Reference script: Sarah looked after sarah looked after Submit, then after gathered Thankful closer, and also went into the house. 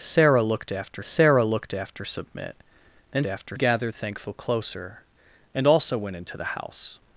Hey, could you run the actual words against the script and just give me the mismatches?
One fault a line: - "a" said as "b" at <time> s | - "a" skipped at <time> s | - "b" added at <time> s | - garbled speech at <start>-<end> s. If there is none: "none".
none